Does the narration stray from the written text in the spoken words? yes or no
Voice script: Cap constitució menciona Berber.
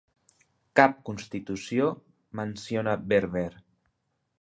no